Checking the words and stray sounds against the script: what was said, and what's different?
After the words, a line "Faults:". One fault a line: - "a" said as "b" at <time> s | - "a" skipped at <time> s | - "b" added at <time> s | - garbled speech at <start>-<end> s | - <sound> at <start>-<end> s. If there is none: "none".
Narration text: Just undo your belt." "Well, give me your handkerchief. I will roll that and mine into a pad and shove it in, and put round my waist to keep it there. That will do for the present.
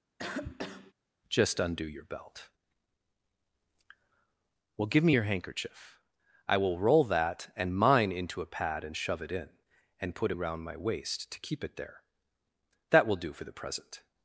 Just undo your belt." "Well, give me your handkerchief. I will roll that and mine into a pad and shove it in, and put round my waist to keep it there. That will do for the present.
Faults:
- cough at 0.2-0.9 s